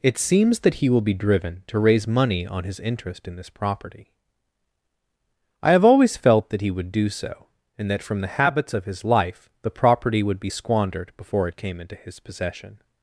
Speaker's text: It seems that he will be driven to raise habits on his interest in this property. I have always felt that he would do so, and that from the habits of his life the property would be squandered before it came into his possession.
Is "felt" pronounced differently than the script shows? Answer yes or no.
no